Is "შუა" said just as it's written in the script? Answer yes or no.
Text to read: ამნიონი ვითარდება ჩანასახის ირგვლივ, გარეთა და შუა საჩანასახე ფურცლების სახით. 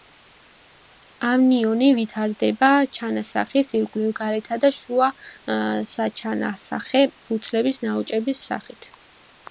yes